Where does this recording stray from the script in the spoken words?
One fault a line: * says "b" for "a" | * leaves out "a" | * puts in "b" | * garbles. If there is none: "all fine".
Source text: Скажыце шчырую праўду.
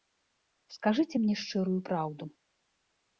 * puts in "мне"